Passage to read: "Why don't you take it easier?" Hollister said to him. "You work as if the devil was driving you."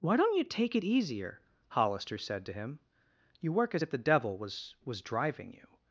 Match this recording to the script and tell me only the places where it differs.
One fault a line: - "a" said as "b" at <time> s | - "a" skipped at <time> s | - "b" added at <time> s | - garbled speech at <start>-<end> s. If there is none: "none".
- "was" added at 4.8 s